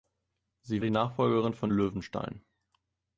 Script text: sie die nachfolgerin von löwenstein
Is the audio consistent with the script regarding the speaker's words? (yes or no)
yes